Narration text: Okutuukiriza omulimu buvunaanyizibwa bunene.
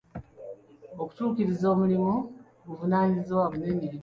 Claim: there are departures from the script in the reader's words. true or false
false